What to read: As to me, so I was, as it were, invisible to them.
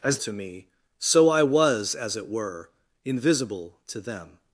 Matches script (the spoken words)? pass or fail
pass